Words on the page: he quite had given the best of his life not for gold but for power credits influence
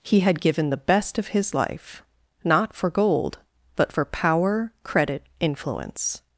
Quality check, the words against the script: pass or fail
fail